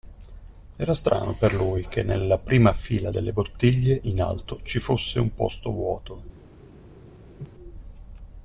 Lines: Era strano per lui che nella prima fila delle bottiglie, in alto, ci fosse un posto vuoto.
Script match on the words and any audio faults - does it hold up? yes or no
no